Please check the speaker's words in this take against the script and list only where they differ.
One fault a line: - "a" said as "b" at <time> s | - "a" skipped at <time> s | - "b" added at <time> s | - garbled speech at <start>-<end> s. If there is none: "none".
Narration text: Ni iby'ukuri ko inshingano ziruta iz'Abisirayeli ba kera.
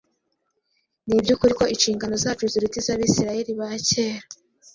- "zacu" added at 2.2 s